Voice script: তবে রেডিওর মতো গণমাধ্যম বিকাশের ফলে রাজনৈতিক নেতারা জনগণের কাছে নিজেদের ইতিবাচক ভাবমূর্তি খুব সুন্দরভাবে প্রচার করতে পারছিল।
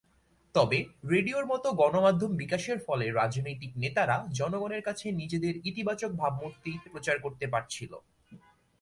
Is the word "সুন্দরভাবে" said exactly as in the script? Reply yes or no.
no